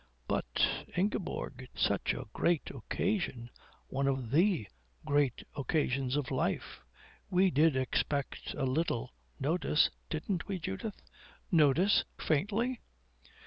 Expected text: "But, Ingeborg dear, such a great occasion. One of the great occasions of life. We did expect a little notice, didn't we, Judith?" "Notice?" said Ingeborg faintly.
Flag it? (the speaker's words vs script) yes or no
yes